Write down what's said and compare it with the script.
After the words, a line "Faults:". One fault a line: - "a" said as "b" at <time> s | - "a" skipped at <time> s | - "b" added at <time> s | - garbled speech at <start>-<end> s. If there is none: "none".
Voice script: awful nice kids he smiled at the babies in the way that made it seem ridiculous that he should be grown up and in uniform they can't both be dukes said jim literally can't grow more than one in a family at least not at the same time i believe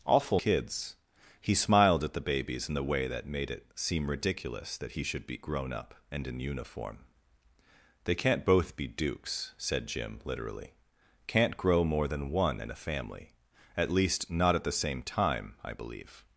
awful kids he smiled at the babies in the way that made it seem ridiculous that he should be grown up and in uniform they can't both be dukes said jim literally can't grow more than one in a family at least not at the same time i believe
Faults:
- "nice" skipped at 0.4 s